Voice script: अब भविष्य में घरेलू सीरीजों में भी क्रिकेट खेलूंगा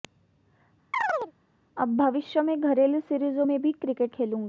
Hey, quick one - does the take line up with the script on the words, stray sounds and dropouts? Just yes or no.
no